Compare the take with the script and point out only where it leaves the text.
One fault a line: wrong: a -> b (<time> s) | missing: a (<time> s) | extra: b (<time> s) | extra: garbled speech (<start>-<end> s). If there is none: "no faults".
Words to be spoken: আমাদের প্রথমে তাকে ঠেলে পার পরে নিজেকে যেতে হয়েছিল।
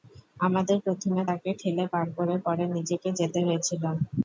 extra: করে (2.2 s)